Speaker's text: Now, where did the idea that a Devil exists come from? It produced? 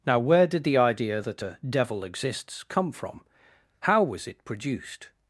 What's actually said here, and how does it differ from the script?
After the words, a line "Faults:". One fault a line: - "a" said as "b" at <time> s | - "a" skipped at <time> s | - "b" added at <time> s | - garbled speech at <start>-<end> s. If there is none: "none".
Now, where did the idea that a Devil exists come from? How was it produced?
Faults:
- "How was" added at 3.8 s